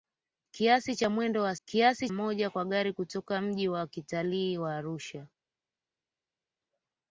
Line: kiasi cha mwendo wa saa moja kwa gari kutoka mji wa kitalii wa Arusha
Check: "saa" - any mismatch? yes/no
yes